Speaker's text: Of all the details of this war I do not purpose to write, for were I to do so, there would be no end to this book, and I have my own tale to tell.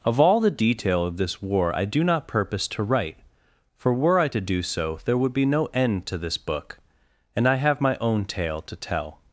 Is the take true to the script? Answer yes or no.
no